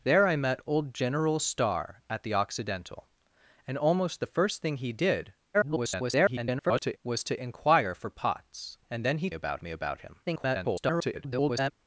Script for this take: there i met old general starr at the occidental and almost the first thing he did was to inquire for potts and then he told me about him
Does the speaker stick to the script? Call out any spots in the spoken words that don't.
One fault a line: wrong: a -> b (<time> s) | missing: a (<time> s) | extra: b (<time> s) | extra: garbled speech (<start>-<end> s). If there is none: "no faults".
extra: garbled speech (5.5-7.0 s)
wrong: told -> about (9.3 s)
extra: garbled speech (10.2-11.7 s)